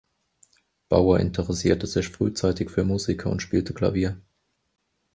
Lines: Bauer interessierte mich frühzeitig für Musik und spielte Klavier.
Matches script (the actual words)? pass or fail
fail